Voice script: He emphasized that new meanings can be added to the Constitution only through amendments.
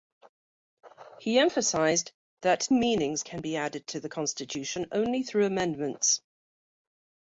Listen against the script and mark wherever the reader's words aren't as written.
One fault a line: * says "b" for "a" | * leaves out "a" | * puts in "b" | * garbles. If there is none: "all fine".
* leaves out "new"